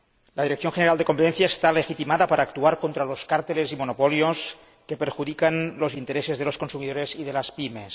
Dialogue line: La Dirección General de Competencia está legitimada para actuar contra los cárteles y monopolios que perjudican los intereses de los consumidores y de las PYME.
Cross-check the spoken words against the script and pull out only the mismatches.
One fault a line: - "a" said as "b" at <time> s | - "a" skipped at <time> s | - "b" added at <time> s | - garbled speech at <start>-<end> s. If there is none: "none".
none